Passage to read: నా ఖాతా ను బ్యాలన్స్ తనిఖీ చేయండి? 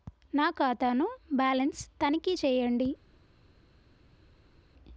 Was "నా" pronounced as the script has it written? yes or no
yes